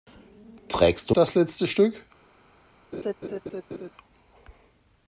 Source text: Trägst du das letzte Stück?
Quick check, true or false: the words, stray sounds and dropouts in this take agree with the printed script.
false